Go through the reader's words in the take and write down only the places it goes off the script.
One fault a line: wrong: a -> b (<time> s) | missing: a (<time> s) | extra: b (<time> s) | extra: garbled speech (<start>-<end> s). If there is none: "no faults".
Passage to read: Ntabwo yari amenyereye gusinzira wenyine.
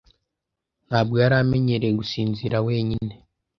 no faults